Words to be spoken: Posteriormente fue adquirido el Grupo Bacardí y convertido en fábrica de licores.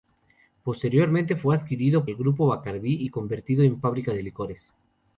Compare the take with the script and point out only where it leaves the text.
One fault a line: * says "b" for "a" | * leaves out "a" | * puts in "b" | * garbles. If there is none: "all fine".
all fine